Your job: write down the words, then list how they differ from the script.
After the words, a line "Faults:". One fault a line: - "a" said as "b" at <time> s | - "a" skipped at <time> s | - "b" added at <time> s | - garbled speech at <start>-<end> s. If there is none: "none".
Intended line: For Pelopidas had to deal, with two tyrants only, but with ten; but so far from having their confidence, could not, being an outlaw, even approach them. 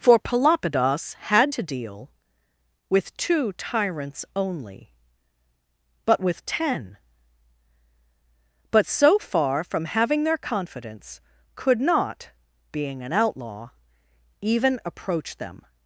For Pelopidas had to deal, with two tyrants only, but with ten; but so far from having their confidence, could not, being an outlaw, even approach them.
Faults:
none